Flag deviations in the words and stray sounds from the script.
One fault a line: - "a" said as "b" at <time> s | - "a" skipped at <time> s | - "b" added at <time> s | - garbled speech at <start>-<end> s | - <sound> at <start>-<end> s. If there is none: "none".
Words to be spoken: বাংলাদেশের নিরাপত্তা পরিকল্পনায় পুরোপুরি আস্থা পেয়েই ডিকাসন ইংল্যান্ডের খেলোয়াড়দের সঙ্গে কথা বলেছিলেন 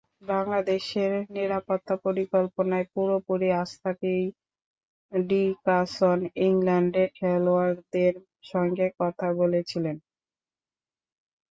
none